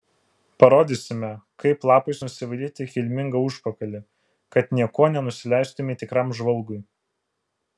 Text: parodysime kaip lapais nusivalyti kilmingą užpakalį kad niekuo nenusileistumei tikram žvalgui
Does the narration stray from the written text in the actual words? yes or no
no